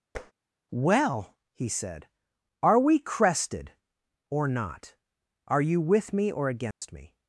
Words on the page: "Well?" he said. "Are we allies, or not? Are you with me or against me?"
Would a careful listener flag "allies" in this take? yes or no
yes